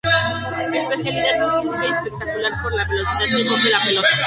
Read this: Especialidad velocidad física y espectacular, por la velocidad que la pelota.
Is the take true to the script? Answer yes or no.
no